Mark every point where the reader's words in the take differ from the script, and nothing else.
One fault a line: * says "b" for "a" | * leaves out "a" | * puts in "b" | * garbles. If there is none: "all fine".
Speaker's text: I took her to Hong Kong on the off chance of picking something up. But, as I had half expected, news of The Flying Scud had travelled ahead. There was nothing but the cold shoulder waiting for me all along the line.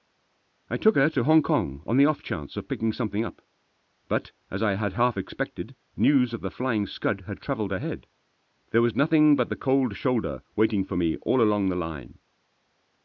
all fine